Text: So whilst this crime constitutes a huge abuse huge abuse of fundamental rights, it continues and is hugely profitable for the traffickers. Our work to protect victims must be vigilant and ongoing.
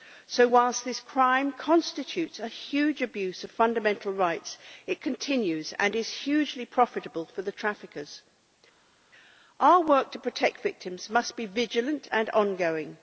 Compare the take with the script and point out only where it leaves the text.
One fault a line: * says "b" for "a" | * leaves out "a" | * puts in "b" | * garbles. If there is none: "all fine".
* leaves out "huge abuse"